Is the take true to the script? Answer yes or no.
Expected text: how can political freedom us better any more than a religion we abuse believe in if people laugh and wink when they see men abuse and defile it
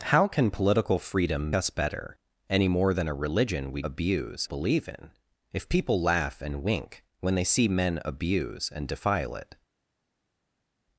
yes